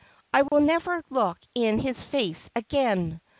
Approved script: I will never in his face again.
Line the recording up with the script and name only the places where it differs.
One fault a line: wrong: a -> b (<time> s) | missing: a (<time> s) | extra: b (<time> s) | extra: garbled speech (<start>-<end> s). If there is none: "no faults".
extra: look (1.1 s)